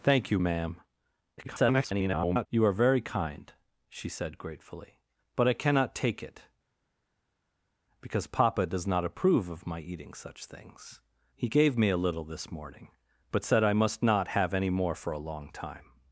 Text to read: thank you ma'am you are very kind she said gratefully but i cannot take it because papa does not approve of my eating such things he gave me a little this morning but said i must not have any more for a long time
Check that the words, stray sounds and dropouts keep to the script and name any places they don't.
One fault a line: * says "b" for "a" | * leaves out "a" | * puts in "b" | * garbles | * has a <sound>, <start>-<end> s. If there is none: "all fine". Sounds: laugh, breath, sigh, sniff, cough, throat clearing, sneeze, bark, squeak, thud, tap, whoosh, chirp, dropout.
* garbles